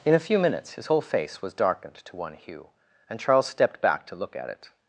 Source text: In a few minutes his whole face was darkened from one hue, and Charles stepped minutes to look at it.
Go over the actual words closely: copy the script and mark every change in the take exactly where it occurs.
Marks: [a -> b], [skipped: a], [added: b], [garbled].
In a few minutes his whole face was darkened [from -> to] one hue, and Charles stepped [minutes -> back] to look at it.